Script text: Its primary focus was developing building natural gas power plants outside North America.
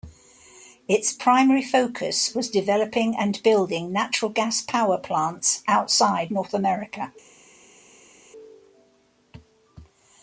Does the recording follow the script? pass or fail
fail